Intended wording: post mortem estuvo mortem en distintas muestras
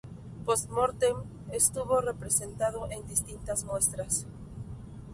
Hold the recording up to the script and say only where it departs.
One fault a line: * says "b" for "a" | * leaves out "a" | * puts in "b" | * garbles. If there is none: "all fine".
* says "representado" for "mortem"